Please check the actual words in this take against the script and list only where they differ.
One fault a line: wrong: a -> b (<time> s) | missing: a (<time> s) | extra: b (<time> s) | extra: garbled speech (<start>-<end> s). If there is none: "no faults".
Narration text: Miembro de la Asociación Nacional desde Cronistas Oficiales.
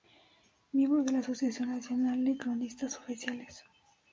wrong: desde -> de (2.2 s)